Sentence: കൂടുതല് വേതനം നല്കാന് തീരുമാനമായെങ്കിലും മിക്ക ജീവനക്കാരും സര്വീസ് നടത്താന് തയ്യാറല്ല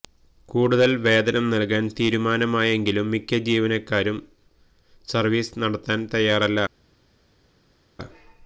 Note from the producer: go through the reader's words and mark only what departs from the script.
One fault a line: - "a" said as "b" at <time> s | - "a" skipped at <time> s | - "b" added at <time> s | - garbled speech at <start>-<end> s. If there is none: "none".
none